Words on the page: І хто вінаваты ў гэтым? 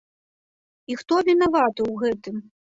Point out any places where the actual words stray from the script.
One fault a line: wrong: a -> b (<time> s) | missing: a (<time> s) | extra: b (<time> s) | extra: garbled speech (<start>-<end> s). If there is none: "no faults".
no faults